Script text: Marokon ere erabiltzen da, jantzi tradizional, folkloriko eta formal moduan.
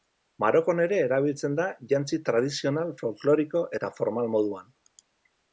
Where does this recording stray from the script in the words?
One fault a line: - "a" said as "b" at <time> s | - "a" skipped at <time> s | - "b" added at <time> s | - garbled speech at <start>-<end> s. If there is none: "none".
none